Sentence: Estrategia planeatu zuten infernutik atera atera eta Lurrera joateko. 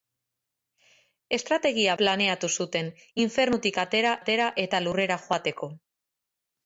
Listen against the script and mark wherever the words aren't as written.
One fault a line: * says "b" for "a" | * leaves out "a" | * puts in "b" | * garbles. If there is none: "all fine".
all fine